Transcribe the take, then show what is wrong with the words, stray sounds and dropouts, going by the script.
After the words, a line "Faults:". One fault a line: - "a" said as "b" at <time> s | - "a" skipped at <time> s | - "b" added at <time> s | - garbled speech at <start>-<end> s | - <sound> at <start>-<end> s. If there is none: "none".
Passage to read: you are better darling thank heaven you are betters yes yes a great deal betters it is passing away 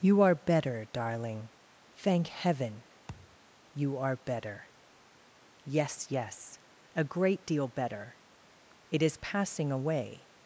you are better darling thank heaven you are better yes yes a great deal better it is passing away
Faults:
- thud at 3.1-3.4 s
- "betters" said as "better" at 4.2 s
- "betters" said as "better" at 7.7 s